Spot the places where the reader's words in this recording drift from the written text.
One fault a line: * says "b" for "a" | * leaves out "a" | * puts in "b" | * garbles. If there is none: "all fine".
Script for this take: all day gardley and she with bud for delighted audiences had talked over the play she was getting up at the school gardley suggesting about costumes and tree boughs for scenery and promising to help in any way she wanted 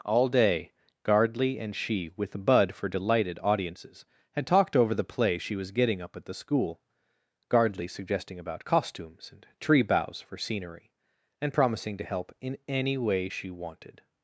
all fine